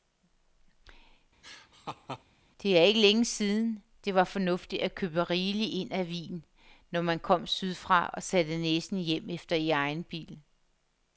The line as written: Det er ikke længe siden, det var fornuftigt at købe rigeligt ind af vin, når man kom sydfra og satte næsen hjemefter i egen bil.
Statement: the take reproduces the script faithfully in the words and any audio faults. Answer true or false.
false